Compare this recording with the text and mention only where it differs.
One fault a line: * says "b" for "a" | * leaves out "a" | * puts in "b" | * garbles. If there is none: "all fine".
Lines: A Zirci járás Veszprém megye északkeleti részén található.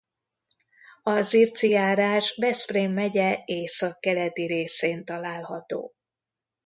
all fine